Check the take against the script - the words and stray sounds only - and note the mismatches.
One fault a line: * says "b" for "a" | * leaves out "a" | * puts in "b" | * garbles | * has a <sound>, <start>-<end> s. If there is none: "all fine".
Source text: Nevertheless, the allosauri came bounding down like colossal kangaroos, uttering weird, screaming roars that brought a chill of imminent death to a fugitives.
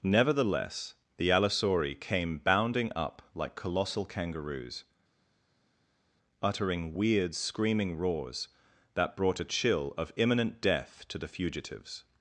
* says "up" for "down"
* says "the" for "a"